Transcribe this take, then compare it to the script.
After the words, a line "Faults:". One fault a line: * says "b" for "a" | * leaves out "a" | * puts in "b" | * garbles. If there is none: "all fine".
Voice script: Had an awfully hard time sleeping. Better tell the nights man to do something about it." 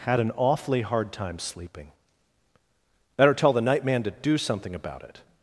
Had an awfully hard time sleeping. Better tell the night man to do something about it."
Faults:
* says "night" for "nights"